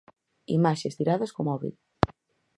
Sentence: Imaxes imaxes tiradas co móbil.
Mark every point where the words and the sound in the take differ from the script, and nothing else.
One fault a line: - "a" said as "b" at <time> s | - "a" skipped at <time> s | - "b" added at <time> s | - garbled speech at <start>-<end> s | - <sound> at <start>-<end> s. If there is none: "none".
- "imaxes" skipped at 1.0 s